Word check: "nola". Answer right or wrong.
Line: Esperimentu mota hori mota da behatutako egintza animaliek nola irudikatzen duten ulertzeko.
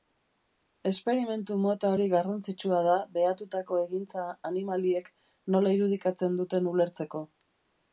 right